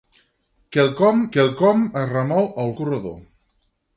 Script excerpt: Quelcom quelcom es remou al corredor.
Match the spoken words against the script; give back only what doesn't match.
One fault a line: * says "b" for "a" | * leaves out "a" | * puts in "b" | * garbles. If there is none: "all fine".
all fine